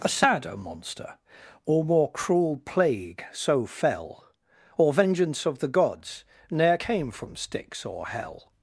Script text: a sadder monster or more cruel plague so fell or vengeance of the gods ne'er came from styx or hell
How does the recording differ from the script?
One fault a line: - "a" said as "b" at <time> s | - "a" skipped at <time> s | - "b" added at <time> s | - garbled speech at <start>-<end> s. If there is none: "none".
none